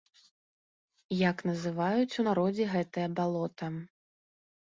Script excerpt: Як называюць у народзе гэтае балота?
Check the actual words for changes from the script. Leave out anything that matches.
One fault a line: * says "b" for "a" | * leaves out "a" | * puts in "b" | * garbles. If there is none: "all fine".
all fine